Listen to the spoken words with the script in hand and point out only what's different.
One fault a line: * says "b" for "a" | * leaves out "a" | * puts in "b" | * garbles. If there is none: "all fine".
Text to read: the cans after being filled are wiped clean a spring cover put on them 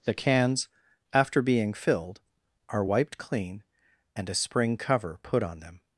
* puts in "and"